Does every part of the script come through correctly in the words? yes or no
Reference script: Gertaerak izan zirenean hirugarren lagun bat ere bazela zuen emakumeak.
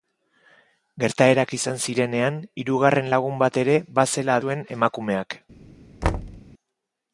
yes